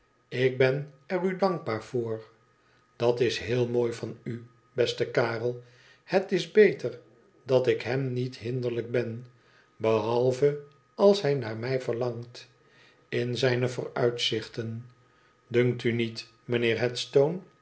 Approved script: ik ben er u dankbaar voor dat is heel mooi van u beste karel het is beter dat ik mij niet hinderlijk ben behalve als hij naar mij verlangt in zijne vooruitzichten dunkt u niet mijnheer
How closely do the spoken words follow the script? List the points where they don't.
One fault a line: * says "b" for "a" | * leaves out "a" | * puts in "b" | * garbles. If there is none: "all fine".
* says "hem" for "mij"